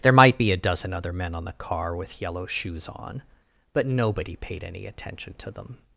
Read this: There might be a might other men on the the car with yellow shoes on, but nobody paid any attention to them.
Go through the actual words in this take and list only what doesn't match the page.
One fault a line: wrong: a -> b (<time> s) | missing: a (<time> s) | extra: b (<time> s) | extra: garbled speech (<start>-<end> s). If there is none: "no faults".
wrong: might -> dozen (0.6 s)
missing: the (1.5 s)